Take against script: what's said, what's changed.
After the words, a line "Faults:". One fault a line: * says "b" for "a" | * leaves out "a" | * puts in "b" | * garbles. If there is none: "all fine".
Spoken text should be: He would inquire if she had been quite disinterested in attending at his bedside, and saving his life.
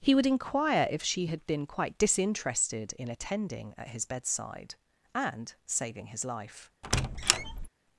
He would inquire if she had been quite disinterested in attending at his bedside, and saving his life.
Faults:
all fine